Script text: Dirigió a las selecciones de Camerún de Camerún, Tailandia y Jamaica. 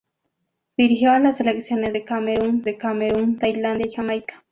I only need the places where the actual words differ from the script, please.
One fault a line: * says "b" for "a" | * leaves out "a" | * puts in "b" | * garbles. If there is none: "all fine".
all fine